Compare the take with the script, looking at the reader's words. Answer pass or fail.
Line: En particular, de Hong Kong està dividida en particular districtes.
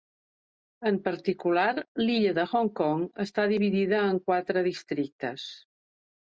fail